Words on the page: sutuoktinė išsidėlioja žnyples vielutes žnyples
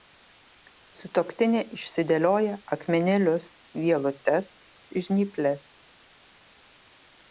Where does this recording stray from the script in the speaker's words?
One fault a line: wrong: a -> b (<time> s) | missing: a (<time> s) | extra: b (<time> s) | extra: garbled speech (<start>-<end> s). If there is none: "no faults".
wrong: žnyples -> akmenėlius (2.8 s)